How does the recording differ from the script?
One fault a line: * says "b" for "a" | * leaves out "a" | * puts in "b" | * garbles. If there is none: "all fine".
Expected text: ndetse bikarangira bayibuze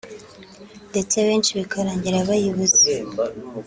* puts in "benshi"